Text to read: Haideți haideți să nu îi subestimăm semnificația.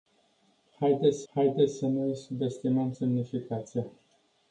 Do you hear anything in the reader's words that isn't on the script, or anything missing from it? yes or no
no